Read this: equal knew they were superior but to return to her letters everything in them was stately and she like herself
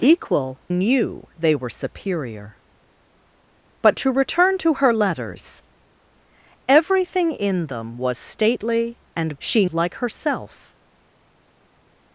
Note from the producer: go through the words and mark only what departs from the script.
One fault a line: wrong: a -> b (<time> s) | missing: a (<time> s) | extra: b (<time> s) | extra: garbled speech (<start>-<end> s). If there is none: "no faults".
no faults